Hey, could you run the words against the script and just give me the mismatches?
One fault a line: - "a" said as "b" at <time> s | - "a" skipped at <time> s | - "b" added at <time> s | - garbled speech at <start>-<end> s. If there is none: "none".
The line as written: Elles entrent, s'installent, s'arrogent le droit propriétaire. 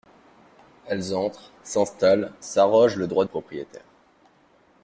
none